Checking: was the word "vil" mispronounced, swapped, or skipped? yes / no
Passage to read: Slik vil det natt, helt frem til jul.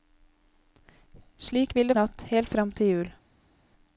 no